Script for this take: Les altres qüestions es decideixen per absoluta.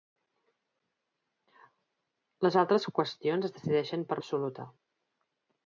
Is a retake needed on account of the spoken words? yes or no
no